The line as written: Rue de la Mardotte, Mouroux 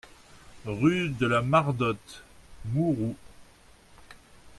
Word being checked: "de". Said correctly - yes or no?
yes